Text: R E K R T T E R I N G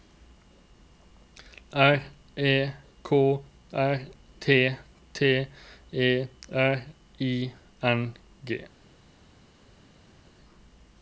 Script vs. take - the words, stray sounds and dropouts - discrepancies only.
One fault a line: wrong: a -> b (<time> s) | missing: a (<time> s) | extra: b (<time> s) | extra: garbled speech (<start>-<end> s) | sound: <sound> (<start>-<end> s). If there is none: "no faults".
no faults